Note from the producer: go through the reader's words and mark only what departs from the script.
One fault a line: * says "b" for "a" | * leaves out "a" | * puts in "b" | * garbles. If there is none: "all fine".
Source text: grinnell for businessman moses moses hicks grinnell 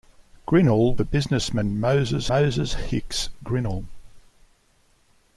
all fine